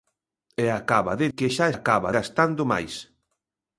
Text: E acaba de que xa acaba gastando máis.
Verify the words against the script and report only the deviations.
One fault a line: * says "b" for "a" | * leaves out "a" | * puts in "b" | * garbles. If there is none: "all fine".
all fine